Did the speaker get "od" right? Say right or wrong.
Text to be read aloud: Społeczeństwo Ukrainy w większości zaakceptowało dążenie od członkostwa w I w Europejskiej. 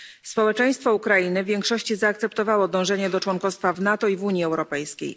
wrong